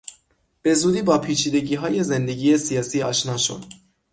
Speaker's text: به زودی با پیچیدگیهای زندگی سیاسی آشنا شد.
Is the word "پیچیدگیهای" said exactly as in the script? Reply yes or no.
yes